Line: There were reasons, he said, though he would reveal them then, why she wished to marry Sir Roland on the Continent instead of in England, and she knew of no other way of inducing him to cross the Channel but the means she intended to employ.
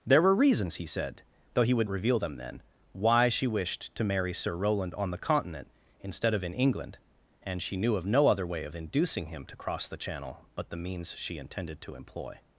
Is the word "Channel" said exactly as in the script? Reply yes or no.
yes